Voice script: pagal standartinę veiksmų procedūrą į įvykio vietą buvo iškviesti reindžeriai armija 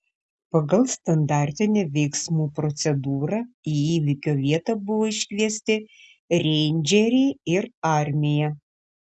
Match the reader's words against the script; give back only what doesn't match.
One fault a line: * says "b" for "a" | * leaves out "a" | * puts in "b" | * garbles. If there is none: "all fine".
* puts in "ir"